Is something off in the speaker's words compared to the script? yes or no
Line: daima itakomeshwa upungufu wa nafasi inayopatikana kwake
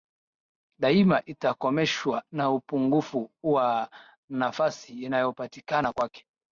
yes